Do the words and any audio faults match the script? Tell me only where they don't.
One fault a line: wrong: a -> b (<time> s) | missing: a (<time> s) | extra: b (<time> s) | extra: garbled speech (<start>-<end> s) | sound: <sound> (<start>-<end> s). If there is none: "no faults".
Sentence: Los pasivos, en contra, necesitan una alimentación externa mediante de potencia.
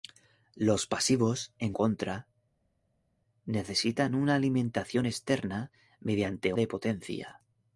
no faults